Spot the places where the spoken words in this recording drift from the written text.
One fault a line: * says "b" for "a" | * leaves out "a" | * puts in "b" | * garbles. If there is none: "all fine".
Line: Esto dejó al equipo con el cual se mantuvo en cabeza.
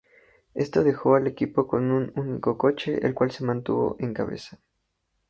* puts in "un único coche"